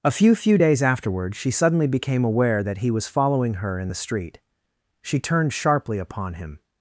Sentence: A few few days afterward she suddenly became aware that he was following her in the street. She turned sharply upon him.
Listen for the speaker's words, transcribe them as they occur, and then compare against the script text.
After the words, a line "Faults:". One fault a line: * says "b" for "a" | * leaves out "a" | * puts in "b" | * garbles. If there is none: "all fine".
A few few days afterward she suddenly became aware that he was following her in the street. She turned sharply upon him.
Faults:
all fine